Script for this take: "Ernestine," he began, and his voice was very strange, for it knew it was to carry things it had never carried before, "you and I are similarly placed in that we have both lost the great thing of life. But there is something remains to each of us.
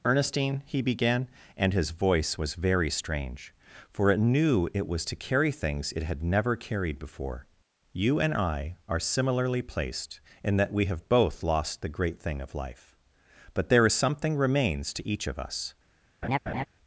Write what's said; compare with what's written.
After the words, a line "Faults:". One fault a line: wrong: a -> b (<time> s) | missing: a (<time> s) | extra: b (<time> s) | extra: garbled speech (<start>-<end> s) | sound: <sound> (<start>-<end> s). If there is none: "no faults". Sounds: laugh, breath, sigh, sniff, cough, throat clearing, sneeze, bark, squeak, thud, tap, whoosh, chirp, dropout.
"Ernestine," he began, and his voice was very strange, for it knew it was to carry things it had never carried before, "you and I are similarly placed in that we have both lost the great thing of life. But there is something remains to each of us.
Faults:
sound: laugh (16.2-16.7 s)